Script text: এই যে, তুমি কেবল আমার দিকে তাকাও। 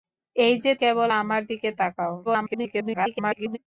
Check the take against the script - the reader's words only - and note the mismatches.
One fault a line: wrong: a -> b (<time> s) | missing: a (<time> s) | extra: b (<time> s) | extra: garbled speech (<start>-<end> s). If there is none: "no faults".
missing: তুমি (0.7 s)
extra: garbled speech (2.2-3.6 s)